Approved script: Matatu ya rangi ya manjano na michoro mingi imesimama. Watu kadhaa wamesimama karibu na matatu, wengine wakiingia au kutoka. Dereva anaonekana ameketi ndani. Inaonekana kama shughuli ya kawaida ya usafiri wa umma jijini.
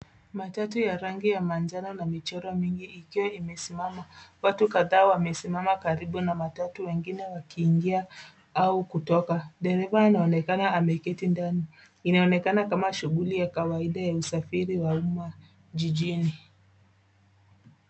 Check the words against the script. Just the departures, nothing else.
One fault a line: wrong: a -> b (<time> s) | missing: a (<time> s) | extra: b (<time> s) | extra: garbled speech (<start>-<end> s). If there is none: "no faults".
extra: ikiwa (2.9 s)